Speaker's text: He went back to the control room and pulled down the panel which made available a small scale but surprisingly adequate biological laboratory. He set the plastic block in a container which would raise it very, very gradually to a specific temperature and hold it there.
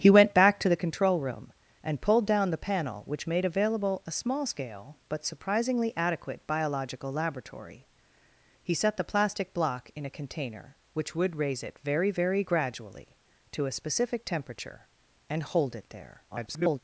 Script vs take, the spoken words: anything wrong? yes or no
yes